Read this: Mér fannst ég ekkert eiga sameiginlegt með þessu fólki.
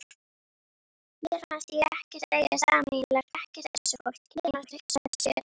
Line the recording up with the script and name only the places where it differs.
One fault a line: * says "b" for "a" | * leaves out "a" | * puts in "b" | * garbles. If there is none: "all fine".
* says "ekkert" for "með"
* garbles